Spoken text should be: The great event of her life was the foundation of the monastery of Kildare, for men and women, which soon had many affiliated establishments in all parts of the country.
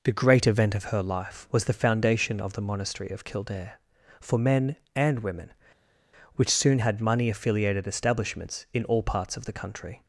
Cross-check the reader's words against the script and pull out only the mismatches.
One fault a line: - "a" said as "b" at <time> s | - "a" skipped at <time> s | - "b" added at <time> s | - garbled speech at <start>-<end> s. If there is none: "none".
- "many" said as "money" at 7.0 s